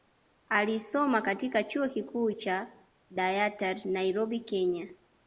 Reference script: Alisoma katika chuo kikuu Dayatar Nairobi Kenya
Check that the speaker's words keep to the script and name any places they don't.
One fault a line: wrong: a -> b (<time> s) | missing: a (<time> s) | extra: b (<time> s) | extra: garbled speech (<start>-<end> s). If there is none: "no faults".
extra: cha (2.3 s)